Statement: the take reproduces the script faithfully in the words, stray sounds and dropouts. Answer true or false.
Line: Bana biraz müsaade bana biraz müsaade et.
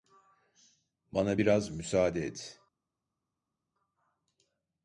false